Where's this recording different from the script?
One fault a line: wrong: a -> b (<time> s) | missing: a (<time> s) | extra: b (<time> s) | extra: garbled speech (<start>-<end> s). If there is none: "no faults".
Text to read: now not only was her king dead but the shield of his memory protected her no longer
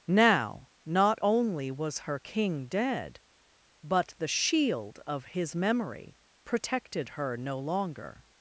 no faults